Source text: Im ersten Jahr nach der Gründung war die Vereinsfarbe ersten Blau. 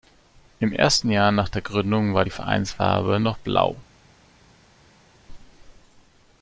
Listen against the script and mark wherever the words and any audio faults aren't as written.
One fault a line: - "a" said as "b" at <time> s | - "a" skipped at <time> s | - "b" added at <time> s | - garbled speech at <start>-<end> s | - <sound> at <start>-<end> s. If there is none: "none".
- "ersten" said as "noch" at 3.2 s